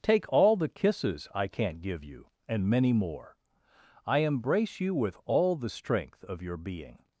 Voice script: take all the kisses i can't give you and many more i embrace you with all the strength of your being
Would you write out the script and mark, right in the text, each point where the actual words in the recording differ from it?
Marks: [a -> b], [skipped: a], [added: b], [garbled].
take all the kisses i can't give you and many more i embrace you with all the strength of your being